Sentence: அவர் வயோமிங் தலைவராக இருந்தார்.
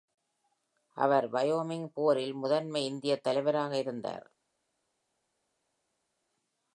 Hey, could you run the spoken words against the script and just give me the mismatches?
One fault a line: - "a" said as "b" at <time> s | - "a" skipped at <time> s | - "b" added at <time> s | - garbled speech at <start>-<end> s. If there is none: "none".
- "போரில் முதன்மை இந்தியத்" added at 1.9 s